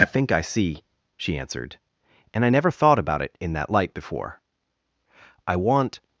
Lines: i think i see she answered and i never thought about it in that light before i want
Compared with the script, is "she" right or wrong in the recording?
right